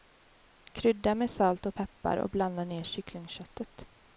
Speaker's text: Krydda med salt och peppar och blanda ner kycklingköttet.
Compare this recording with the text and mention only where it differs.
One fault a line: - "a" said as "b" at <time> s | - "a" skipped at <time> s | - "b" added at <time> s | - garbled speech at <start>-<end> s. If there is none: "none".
none